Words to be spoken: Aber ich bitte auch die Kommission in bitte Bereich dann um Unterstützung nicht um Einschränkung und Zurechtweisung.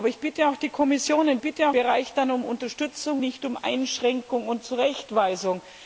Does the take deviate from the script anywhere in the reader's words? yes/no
no